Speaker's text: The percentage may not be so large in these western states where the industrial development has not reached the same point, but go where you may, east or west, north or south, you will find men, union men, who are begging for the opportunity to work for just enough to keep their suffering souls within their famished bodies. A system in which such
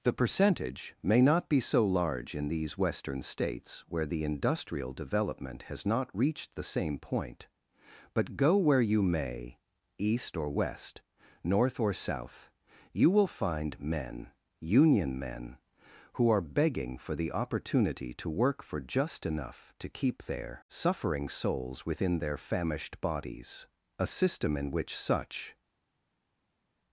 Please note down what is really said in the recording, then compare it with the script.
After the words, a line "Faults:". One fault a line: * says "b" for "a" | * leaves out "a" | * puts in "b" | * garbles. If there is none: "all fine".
The percentage may not be so large in these western states where the industrial development has not reached the same point, but go where you may, east or west, north or south, you will find men, union men, who are begging for the opportunity to work for just enough to keep their suffering souls within their famished bodies. A system in which such
Faults:
all fine